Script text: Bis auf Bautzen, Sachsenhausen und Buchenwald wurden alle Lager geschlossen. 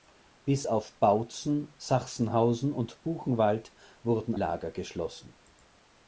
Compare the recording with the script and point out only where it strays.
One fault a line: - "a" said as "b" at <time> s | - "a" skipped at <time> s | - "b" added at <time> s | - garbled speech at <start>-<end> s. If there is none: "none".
- "alle" skipped at 4.3 s